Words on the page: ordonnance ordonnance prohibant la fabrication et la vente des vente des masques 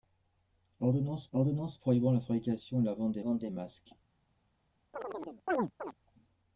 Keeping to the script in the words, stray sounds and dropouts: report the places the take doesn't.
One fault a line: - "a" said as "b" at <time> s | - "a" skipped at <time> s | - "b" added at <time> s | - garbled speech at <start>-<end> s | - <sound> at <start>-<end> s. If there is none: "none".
- chirp at 4.9-5.9 s